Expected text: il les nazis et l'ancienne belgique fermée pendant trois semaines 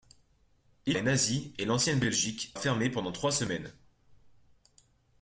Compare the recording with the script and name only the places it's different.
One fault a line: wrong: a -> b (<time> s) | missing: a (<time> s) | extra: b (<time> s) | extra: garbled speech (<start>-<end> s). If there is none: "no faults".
no faults